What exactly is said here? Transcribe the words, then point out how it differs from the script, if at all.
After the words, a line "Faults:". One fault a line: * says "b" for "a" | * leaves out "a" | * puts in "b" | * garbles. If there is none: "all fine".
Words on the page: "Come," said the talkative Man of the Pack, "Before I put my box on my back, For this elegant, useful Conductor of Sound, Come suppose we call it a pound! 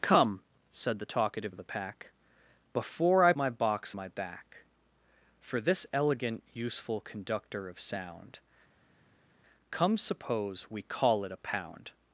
"Come," said the talkative Of the Pack, "Before I my box my back, For this elegant, useful Conductor of Sound, Come suppose we call it a pound!
Faults:
* leaves out "Man"
* leaves out "put"
* leaves out "on"